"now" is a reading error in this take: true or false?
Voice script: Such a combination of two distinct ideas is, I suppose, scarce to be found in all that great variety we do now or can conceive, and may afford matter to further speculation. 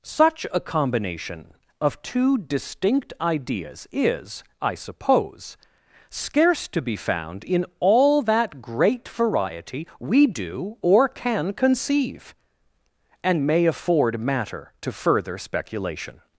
true